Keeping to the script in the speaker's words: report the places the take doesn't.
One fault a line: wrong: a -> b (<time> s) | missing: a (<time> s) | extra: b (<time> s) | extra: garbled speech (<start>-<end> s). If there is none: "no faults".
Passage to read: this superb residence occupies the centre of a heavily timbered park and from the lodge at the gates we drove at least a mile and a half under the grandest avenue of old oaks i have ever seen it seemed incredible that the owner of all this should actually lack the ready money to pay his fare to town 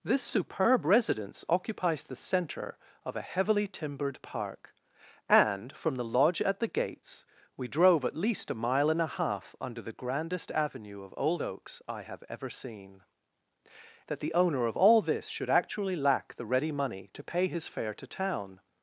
missing: it seemed incredible (13.0 s)